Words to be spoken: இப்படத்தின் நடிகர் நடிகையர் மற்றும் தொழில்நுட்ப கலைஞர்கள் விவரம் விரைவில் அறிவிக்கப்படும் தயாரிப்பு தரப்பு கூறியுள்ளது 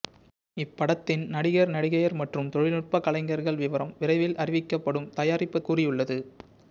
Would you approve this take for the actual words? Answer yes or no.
no